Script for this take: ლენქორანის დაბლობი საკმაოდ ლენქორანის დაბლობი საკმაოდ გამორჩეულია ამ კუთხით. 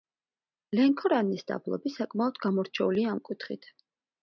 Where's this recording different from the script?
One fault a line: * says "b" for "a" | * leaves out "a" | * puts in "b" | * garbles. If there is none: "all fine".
* leaves out "ლენქორანის დაბლობი საკმაოდ"